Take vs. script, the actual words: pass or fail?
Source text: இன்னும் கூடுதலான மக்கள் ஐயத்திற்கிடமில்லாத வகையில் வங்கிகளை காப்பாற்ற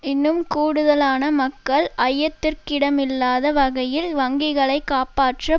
pass